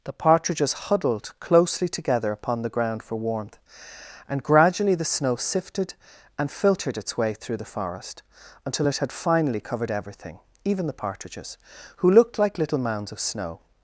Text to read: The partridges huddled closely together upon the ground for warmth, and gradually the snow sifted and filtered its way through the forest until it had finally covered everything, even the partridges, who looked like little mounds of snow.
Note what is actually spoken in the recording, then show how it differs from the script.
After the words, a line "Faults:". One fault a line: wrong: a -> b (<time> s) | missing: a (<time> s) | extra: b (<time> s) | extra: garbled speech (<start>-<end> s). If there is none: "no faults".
The partridges huddled closely together upon the ground for warmth, and gradually the snow sifted and filtered its way through the forest until it had finally covered everything, even the partridges, who looked like little mounds of snow.
Faults:
no faults